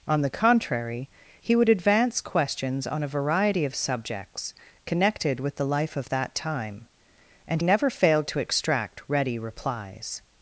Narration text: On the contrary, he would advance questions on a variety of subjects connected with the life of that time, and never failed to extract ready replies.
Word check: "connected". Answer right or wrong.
right